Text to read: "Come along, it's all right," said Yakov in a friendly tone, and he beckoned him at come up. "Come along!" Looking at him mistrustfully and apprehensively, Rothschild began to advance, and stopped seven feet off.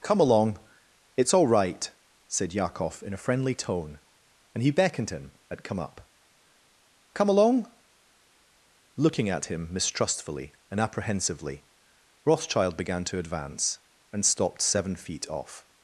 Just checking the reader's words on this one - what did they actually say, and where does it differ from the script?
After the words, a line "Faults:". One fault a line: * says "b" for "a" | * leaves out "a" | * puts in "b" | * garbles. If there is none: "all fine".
"Come along, it's all right," said Yakov in a friendly tone, and he beckoned him at come up. "Come along!" Looking at him mistrustfully and apprehensively, Rothschild began to advance, and stopped seven feet off.
Faults:
all fine